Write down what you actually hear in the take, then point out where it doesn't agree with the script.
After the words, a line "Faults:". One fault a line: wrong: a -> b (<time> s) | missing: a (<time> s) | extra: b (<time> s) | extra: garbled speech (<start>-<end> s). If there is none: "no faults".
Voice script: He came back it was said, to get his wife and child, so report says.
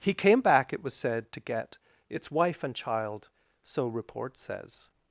He came back it was said, to get its wife and child, so report says.
Faults:
wrong: his -> its (2.1 s)